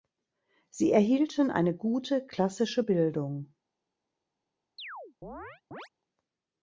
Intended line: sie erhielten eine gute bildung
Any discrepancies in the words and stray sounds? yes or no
yes